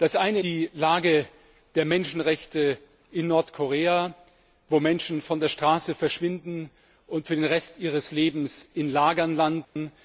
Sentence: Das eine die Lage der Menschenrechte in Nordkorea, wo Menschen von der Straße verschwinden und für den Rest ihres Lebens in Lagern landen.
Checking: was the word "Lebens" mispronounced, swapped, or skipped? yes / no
no